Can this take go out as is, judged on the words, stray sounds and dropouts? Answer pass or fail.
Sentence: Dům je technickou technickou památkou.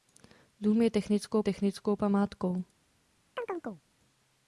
fail